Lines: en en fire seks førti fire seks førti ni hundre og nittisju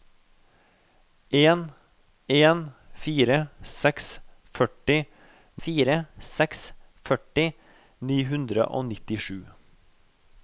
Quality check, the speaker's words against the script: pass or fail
pass